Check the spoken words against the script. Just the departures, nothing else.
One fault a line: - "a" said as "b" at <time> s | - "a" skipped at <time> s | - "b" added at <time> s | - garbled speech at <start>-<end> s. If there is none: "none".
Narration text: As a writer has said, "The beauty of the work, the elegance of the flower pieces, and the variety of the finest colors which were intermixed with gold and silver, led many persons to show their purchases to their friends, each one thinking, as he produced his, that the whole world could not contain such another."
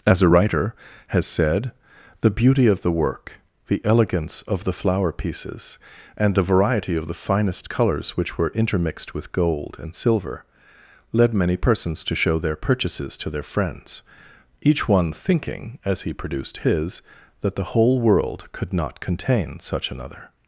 none